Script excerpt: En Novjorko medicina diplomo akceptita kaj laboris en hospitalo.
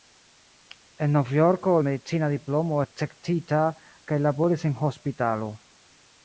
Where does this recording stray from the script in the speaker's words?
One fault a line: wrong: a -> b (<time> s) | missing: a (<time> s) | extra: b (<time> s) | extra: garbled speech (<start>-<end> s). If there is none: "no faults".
no faults